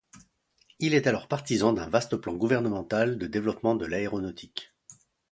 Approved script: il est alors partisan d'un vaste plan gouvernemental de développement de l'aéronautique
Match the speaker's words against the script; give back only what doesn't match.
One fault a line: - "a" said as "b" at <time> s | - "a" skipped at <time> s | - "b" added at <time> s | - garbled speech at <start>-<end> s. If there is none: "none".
none